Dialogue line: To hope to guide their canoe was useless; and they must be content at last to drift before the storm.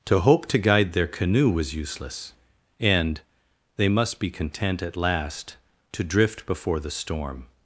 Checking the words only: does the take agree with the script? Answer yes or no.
yes